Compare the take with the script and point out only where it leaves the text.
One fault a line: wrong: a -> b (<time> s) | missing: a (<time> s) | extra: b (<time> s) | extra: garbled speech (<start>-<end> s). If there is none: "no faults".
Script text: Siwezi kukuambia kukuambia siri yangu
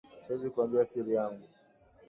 missing: kukuambia (0.8 s)